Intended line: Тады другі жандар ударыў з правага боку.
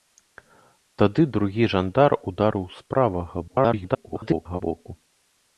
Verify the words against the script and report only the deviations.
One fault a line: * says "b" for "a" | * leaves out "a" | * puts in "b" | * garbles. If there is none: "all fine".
* garbles